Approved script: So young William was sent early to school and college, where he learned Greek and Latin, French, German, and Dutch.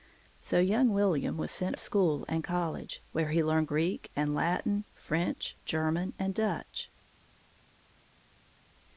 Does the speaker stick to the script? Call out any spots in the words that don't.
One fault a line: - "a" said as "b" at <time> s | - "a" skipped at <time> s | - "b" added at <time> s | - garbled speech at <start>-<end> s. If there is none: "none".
- "early to" skipped at 1.8 s